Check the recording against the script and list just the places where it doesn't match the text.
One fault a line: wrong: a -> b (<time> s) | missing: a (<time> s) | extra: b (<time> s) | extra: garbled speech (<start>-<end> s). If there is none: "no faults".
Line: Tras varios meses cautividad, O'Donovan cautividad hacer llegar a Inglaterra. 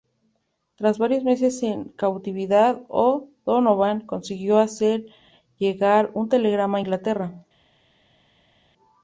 extra: en (1.6 s)
wrong: cautividad -> consiguió (4.0 s)
extra: un telegrama (6.1 s)